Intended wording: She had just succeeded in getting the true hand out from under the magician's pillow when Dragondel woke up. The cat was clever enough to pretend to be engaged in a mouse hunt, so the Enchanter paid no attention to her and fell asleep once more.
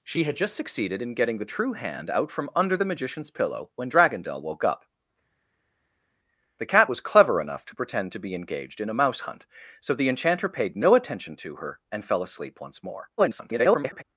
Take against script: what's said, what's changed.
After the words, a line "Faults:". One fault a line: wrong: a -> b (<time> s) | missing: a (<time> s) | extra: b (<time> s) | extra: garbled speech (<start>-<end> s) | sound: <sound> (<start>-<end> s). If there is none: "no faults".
She had just succeeded in getting the true hand out from under the magician's pillow when Dragondel woke up. The cat was clever enough to pretend to be engaged in a mouse hunt, so the Enchanter paid no attention to her and fell asleep once more. [garbled]
Faults:
extra: garbled speech (13.2-14.0 s)